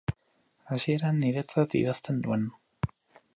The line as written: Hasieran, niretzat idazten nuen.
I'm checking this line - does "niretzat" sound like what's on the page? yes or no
yes